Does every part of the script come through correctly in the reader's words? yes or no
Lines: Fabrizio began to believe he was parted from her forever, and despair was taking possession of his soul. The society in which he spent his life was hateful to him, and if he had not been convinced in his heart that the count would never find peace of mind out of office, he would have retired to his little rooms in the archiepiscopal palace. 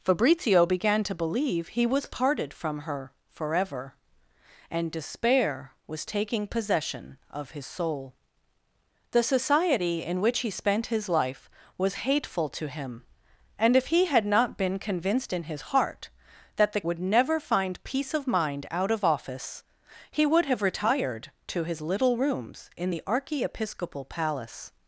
no